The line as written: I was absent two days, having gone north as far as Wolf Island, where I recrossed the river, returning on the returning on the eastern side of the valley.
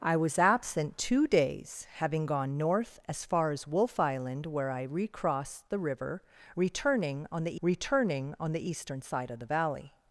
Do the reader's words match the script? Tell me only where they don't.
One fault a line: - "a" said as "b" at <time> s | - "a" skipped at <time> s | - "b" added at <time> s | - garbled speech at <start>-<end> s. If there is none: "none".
none